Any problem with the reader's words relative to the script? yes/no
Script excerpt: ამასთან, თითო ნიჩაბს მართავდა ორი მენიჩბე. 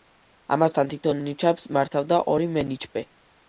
no